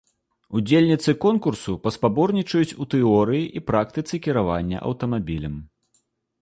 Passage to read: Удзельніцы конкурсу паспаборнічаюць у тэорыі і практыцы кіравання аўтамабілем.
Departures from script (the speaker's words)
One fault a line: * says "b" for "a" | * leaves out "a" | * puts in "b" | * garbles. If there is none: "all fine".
all fine